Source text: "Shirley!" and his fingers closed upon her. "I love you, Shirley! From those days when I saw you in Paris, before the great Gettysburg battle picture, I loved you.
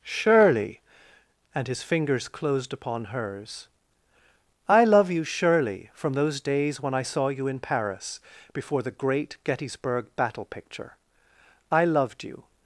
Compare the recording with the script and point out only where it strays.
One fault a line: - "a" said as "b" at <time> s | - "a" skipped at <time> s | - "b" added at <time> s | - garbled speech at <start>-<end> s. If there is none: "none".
- "her" said as "hers" at 3.0 s